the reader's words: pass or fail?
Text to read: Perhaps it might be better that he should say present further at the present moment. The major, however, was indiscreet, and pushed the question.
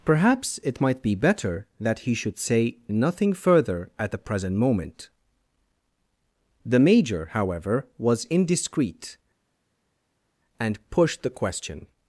fail